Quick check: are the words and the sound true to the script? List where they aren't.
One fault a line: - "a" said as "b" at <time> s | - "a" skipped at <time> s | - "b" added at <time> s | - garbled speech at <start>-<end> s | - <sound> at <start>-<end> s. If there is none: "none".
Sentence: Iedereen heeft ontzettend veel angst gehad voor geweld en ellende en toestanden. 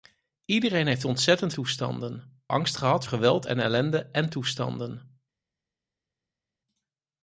- "veel" said as "toestanden" at 1.5 s
- "voor" skipped at 3.1 s